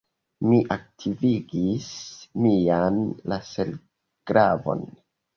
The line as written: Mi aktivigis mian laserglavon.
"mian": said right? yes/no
yes